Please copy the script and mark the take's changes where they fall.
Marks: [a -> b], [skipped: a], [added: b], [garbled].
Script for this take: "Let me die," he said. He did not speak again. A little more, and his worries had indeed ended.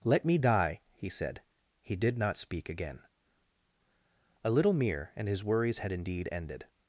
"Let me die," he said. He did not speak again. A little [more, -> mere] and his worries had indeed ended.